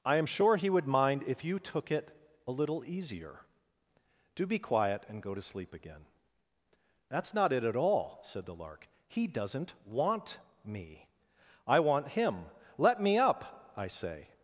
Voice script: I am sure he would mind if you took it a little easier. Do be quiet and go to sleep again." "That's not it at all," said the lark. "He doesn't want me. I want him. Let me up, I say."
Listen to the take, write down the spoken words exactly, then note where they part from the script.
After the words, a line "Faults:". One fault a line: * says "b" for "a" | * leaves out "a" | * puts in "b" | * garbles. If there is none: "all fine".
I am sure he would mind if you took it a little easier. Do be quiet and go to sleep again." "That's not it at all," said the lark. "He doesn't want me. I want him. Let me up, I say."
Faults:
all fine